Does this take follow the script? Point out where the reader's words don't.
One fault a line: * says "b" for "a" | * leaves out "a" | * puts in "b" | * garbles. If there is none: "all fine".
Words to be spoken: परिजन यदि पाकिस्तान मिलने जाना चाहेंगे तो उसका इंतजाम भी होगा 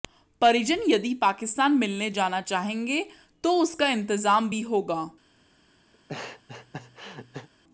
all fine